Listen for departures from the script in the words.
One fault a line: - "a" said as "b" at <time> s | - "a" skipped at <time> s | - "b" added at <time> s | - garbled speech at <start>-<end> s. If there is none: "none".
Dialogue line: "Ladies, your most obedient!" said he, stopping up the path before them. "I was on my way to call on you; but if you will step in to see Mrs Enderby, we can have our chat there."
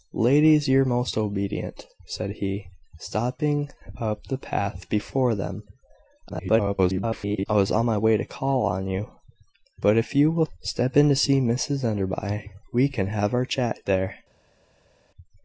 - garbled speech at 6.3-7.5 s